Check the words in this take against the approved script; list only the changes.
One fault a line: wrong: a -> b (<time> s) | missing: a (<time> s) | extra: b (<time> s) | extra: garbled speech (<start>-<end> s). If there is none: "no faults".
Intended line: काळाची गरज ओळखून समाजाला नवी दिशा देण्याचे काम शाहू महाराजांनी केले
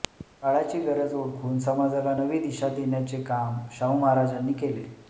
no faults